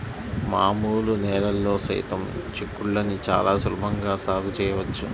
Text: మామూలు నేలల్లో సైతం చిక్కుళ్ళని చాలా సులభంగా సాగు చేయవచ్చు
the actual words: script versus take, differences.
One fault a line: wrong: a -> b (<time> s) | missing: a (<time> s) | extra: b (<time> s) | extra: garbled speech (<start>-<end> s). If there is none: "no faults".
no faults